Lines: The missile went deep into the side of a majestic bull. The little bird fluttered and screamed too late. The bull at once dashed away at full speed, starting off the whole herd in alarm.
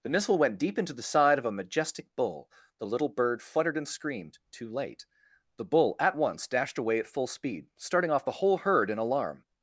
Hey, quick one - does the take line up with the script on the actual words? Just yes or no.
yes